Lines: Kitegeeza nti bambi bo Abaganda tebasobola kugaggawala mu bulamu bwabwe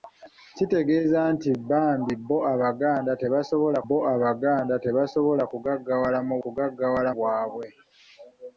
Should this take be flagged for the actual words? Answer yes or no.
yes